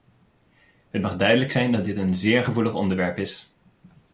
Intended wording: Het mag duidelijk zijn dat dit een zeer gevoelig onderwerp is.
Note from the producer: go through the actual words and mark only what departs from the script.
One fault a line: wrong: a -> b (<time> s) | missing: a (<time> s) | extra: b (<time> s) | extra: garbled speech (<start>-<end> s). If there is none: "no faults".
no faults